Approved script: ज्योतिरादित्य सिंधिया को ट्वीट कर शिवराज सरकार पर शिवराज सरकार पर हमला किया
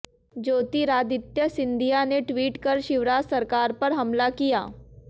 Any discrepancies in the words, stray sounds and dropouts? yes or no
yes